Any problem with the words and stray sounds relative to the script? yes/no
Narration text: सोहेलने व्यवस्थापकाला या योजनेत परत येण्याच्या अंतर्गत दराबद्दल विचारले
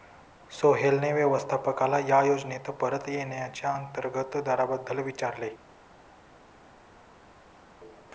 no